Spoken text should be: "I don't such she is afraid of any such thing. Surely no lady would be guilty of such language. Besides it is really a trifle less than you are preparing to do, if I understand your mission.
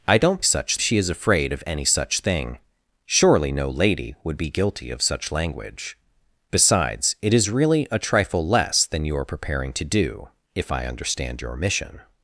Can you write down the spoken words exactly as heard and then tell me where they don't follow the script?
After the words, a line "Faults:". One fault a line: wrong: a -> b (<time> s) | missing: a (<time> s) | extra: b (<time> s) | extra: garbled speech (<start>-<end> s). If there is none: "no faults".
"I don't such she is afraid of any such thing. Surely no lady would be guilty of such language. Besides it is really a trifle less than you are preparing to do, if I understand your mission.
Faults:
no faults